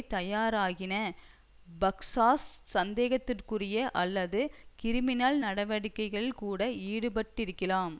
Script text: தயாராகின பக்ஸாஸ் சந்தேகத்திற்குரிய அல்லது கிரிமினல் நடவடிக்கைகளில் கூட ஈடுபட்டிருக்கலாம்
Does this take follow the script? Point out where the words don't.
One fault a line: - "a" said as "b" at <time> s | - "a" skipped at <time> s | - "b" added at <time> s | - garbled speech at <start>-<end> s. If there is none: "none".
none